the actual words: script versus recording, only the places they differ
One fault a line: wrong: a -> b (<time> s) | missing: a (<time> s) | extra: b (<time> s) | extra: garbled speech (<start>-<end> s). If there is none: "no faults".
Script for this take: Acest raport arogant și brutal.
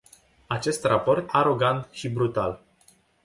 no faults